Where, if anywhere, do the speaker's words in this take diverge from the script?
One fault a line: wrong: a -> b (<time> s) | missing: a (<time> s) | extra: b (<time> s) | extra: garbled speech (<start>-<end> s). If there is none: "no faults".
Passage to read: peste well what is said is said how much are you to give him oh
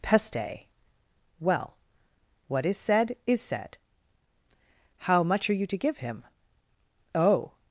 no faults